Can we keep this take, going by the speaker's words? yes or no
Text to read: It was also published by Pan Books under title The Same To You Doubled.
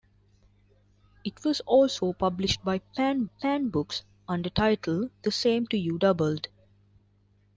no